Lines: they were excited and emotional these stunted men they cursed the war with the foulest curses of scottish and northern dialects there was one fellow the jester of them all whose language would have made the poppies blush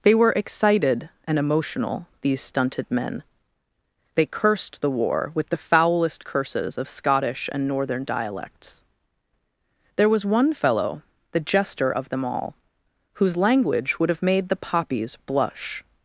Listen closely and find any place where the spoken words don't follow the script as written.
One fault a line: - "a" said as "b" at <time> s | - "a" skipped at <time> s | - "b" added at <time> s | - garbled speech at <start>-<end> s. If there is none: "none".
none